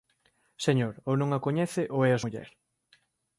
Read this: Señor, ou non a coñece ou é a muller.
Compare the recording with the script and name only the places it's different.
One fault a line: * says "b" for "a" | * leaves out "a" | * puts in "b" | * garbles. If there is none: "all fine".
all fine